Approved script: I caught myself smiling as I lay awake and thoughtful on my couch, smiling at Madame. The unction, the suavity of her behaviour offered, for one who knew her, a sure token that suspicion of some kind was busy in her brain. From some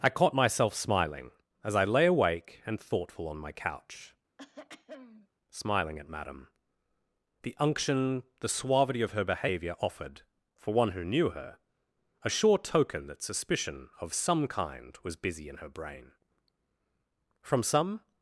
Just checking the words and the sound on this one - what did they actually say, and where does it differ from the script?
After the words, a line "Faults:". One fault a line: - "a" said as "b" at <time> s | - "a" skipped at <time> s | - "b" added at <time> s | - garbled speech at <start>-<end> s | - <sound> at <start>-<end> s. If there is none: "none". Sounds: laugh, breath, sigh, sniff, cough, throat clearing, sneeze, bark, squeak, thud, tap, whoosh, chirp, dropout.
I caught myself smiling as I lay awake and thoughtful on my couch, smiling at Madame. The unction, the suavity of her behaviour offered, for one who knew her, a sure token that suspicion of some kind was busy in her brain. From some
Faults:
- throat clearing at 4.4-5.3 s